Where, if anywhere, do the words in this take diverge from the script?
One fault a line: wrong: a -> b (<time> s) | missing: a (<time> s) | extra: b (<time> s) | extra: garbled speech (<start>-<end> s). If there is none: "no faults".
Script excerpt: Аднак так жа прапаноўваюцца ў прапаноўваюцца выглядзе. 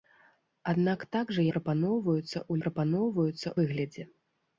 no faults